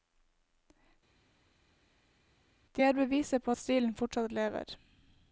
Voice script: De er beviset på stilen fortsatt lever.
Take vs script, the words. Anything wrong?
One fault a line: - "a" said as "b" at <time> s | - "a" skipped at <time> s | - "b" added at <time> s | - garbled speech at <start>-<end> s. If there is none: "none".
none